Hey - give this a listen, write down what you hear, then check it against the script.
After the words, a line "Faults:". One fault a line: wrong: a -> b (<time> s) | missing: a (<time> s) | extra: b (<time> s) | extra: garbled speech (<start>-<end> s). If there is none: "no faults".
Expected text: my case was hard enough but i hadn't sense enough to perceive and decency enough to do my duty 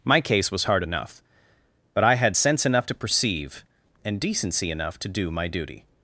my case was hard enough but i had sense enough to perceive and decency enough to do my duty
Faults:
wrong: hadn't -> had (2.1 s)